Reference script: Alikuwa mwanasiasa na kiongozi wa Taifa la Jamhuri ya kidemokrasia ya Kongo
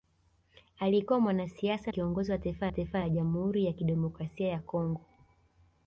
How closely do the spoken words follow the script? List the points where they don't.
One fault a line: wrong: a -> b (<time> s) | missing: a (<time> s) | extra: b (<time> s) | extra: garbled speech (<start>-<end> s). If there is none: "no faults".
missing: na (1.9 s)
extra: Taifa (2.7 s)